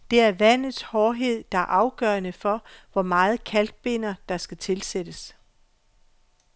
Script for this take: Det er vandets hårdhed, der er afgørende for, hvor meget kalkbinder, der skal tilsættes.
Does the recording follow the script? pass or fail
pass